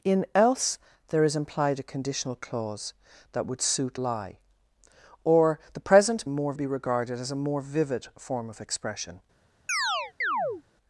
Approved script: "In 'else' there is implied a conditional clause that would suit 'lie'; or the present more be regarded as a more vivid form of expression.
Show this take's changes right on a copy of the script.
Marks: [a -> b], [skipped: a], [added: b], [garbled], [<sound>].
"In 'else' there is implied a conditional clause that would suit 'lie'; or the present more be regarded as a more vivid form of expression. [chirp]